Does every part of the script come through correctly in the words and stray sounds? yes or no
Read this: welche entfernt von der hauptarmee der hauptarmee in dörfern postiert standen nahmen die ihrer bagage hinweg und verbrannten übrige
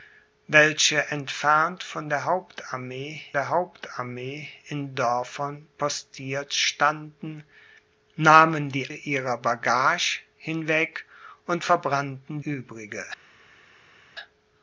yes